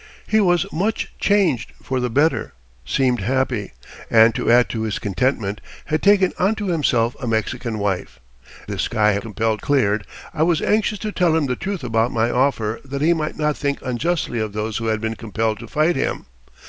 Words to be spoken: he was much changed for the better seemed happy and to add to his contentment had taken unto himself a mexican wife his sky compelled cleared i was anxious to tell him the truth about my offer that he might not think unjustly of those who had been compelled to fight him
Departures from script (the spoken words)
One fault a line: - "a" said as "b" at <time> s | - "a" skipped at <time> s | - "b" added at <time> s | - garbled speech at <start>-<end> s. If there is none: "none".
none